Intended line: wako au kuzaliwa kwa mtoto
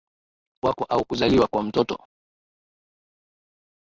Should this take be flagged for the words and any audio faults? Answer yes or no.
no